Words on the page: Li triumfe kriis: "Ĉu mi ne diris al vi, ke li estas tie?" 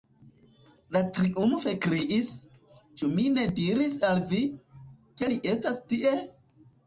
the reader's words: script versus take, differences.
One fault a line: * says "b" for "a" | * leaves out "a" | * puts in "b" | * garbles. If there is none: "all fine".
all fine